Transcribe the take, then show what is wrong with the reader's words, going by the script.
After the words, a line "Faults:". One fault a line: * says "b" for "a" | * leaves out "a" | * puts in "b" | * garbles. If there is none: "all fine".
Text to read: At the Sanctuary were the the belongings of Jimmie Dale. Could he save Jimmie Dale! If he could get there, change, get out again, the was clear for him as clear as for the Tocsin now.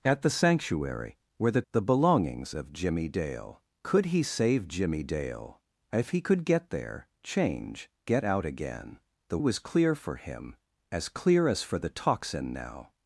At the Sanctuary were the the belongings of Jimmie Dale. Could he save Jimmie Dale! If he could get there, change, get out again, the was clear for him as clear as for the Tocsin now.
Faults:
all fine